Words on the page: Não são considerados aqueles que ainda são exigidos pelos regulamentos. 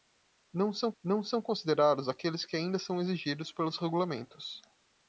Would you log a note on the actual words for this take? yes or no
yes